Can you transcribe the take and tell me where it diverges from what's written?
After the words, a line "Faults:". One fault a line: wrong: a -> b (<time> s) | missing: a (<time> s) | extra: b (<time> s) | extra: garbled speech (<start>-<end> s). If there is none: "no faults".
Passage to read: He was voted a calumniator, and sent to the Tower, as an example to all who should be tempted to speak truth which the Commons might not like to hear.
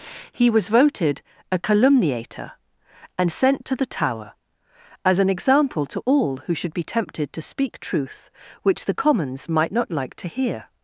He was voted a calumniator, and sent to the Tower, as an example to all who should be tempted to speak truth which the Commons might not like to hear.
Faults:
no faults